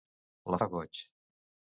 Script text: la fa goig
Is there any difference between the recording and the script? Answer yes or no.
no